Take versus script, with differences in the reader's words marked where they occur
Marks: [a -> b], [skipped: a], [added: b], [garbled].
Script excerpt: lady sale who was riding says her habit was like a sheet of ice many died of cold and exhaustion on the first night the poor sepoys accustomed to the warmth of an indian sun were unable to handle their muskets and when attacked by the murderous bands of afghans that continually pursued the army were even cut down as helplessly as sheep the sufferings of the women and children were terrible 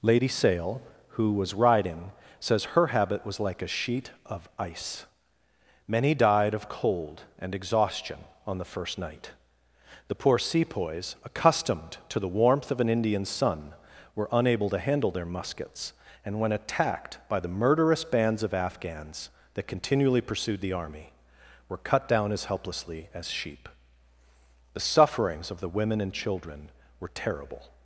lady sale who was riding says her habit was like a sheet of ice many died of cold and exhaustion on the first night the poor sepoys accustomed to the warmth of an indian sun were unable to handle their muskets and when attacked by the murderous bands of afghans that continually pursued the army were [skipped: even] cut down as helplessly as sheep the sufferings of the women and children were terrible